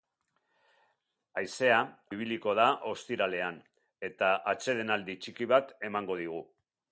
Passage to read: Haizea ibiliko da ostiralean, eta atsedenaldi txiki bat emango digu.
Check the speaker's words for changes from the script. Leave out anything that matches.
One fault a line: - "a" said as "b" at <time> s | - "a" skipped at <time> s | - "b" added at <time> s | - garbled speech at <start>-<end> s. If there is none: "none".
none